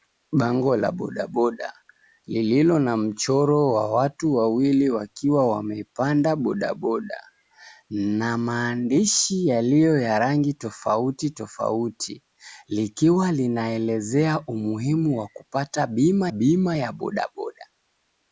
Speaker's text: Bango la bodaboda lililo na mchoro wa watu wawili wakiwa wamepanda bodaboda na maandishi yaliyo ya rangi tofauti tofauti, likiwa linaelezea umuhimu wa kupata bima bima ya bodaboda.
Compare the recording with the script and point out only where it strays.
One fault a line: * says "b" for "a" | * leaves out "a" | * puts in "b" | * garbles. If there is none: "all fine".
all fine